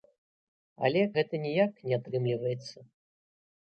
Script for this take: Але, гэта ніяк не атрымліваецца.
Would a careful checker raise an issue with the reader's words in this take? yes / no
no